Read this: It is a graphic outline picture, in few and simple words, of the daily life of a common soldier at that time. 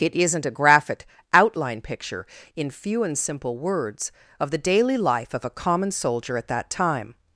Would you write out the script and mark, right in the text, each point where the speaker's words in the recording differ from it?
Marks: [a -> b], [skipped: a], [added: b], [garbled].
It [is -> isn't] a graphic outline picture, in few and simple words, of the daily life of a common soldier at that time.